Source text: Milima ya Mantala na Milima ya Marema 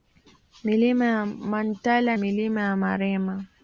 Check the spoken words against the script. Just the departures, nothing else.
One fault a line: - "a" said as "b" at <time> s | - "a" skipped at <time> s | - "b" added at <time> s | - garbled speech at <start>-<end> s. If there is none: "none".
- "na" skipped at 2.2 s